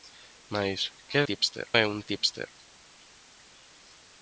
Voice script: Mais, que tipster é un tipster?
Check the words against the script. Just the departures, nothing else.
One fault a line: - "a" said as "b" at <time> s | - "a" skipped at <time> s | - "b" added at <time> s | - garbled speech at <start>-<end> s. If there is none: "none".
none